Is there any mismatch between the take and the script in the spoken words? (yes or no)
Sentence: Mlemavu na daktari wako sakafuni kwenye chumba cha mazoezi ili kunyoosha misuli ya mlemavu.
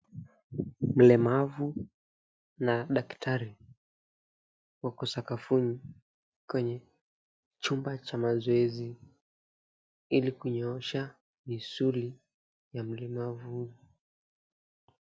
no